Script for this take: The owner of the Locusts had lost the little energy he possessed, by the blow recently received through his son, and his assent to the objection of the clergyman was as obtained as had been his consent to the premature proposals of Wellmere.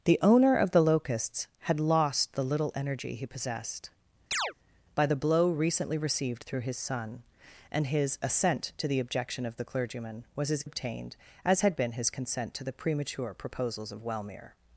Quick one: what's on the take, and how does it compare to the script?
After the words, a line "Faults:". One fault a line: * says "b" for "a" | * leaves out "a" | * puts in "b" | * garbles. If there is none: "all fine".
The owner of the Locusts had lost the little energy he possessed, by the blow recently received through his son, and his assent to the objection of the clergyman was as obtained as had been his consent to the premature proposals of Wellmere.
Faults:
all fine